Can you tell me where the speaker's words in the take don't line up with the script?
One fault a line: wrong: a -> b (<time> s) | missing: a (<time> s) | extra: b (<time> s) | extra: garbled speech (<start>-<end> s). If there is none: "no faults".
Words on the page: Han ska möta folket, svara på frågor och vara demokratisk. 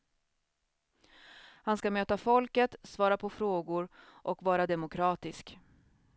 no faults